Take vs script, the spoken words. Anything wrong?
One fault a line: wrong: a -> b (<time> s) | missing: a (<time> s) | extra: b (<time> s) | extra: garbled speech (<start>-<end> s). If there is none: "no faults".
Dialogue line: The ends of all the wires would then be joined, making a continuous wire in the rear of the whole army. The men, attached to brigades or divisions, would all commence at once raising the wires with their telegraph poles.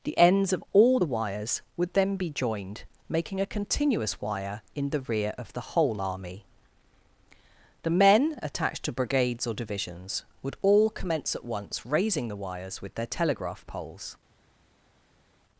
no faults